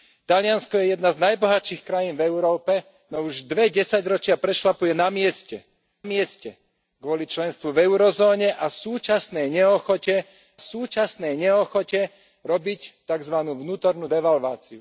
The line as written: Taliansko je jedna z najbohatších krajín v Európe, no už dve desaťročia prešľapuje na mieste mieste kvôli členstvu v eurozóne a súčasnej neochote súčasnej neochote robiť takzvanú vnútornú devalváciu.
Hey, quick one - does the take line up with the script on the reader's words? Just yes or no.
yes